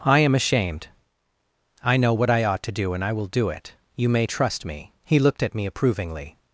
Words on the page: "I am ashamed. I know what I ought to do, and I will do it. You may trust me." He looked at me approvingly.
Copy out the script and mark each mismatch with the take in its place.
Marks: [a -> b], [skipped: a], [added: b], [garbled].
"I am ashamed. I know what I ought to do, and I will do it. You may trust me." He looked at me approvingly.